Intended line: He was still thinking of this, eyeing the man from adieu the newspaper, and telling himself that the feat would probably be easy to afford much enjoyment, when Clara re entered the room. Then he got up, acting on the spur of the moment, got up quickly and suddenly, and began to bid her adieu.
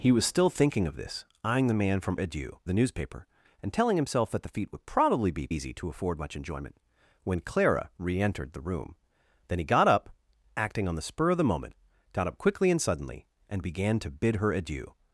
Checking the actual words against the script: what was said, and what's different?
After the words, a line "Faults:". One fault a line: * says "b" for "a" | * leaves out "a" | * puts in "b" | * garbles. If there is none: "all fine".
He was still thinking of this, eyeing the man from adieu the newspaper, and telling himself that the feat would probably be easy to afford much enjoyment, when Clara re entered the room. Then he got up, acting on the spur of the moment, got up quickly and suddenly, and began to bid her adieu.
Faults:
all fine